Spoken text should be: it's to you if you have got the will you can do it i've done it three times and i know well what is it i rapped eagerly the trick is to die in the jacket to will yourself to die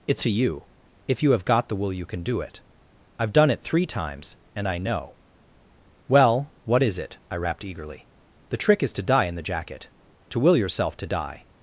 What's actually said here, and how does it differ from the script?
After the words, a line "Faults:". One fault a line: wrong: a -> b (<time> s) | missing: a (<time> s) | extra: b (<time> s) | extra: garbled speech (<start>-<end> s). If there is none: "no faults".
it's to you if you have got the will you can do it i've done it three times and i know well what is it i rapped eagerly the trick is to die in the jacket to will yourself to die
Faults:
no faults